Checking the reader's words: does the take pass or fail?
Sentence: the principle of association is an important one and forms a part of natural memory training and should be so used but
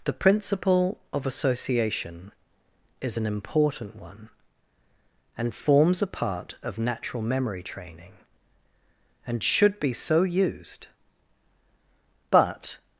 pass